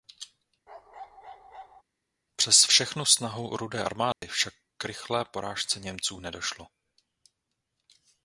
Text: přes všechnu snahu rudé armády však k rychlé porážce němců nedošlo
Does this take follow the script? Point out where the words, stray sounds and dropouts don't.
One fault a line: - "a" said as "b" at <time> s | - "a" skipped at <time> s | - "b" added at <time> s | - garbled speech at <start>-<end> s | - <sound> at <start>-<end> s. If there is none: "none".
- bark at 0.7-1.8 s
- dropout at 4.1-4.2 s